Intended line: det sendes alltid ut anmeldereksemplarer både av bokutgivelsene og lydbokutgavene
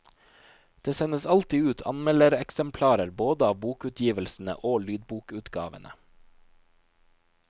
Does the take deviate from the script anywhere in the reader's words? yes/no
no